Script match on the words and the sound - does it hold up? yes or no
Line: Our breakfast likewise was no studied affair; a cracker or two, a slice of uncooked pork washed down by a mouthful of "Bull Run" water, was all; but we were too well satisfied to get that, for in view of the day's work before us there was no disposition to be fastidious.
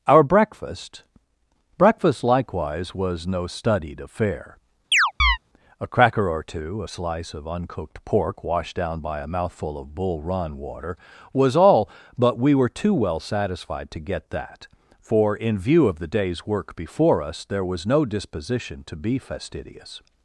no